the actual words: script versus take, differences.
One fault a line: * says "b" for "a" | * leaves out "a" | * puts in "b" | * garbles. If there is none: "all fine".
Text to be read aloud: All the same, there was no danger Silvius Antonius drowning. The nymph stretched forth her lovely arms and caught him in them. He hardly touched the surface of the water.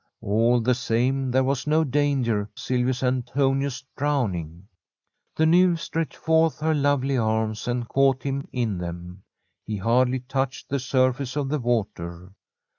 all fine